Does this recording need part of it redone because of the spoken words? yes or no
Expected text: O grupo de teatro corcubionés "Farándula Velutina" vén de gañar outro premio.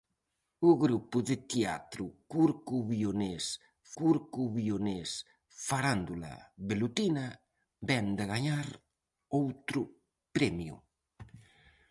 yes